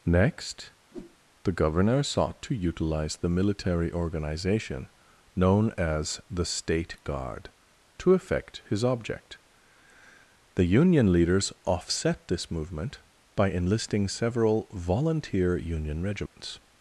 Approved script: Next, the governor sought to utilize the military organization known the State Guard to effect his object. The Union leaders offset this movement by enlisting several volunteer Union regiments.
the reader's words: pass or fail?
fail